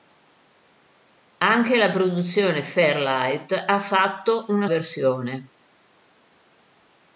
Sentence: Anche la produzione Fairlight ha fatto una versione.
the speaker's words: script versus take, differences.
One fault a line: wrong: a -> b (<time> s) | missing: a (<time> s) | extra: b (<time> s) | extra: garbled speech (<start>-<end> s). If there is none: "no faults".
no faults